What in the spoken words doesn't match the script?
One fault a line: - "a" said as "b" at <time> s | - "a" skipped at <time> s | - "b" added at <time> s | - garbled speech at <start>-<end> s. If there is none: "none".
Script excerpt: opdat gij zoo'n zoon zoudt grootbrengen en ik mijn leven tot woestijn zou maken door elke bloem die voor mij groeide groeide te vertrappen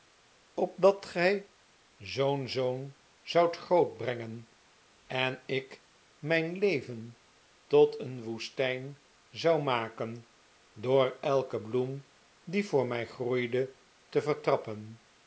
- "een" added at 8.0 s
- "groeide" skipped at 13.7 s